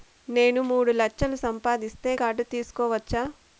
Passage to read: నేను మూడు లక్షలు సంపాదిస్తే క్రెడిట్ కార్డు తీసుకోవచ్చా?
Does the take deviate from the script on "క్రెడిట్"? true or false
true